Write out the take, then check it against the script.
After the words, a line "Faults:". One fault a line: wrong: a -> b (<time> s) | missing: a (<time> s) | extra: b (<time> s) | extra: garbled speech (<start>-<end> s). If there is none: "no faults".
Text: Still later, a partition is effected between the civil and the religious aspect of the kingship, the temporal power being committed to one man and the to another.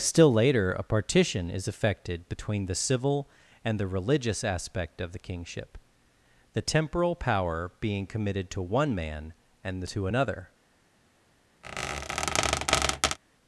Still later, a partition is effected between the civil and the religious aspect of the kingship, the temporal power being committed to one man and the to another.
Faults:
no faults